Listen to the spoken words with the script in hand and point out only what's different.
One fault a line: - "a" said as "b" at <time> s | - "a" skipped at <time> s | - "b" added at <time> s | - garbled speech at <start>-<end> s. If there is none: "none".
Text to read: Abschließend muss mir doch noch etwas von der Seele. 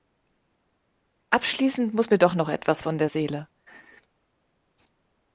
none